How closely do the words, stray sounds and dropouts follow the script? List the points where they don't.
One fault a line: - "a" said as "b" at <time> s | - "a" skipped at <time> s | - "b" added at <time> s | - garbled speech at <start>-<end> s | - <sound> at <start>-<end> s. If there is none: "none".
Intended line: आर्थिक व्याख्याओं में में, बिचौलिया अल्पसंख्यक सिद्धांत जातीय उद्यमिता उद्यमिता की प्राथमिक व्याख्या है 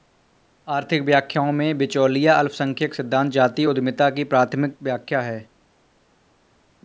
- "में" skipped at 1.8 s
- "उद्यमिता" skipped at 4.1 s